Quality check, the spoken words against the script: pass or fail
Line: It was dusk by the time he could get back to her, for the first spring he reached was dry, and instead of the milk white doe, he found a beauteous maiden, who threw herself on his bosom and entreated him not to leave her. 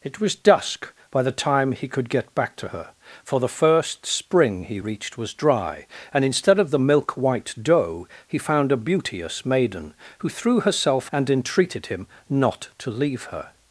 fail